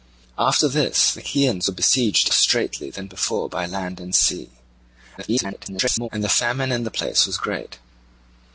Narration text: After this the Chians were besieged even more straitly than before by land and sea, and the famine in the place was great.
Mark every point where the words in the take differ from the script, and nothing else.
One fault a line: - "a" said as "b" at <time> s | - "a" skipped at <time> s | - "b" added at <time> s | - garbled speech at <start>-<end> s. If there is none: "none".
- "even more" skipped at 2.3 s
- garbled speech at 5.2-6.1 s